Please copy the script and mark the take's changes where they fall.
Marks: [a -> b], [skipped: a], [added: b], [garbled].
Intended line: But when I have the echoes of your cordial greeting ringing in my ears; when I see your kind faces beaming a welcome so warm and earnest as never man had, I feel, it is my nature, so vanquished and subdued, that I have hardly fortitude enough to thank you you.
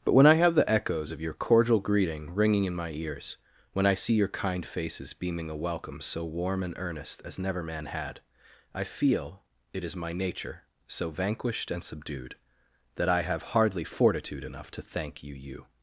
But when I have the echoes of your cordial greeting ringing in my ears; when I see your kind faces beaming a welcome so warm and earnest as never man had, I feel, it is my nature, so vanquished and subdued, that I have hardly fortitude enough to thank you you.